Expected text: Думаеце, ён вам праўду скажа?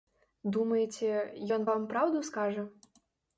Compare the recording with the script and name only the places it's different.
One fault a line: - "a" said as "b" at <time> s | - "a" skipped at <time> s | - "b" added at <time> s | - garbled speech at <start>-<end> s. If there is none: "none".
none